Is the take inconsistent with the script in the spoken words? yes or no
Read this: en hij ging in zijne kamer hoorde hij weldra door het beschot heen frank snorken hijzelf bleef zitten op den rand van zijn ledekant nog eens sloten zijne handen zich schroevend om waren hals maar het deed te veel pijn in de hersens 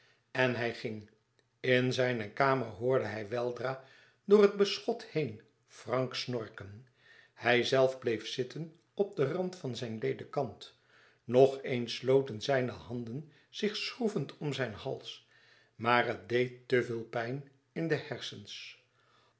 yes